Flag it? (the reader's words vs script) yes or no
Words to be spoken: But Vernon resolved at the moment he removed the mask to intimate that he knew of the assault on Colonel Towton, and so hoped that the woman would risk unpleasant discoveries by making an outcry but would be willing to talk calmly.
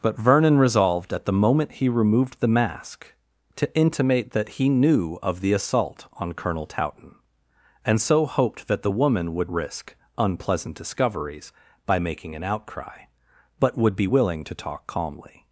no